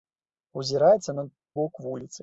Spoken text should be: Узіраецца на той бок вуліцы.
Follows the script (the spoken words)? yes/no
no